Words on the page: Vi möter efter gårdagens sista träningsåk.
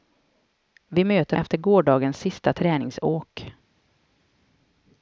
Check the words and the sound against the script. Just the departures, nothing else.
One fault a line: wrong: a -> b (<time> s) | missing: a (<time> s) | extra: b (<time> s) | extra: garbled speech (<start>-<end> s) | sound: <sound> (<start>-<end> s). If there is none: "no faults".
no faults